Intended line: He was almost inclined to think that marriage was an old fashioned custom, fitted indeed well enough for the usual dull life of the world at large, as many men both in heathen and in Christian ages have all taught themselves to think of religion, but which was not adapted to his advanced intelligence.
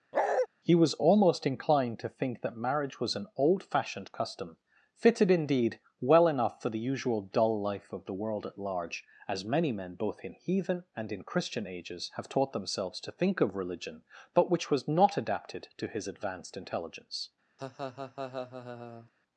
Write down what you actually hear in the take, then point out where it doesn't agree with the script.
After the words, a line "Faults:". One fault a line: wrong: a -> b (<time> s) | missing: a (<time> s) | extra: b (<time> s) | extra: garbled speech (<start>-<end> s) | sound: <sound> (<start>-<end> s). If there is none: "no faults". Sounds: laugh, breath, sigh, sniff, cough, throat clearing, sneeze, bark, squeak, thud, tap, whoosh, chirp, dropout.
He was almost inclined to think that marriage was an old fashioned custom, fitted indeed well enough for the usual dull life of the world at large, as many men both in heathen and in Christian ages have taught themselves to think of religion, but which was not adapted to his advanced intelligence.
Faults:
sound: bark (0.1-0.5 s)
missing: all (12.3 s)
sound: laugh (17.6-19.1 s)